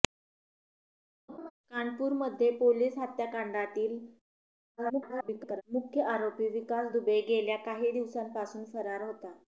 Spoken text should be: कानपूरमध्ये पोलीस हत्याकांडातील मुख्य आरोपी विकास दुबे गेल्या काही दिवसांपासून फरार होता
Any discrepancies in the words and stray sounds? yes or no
yes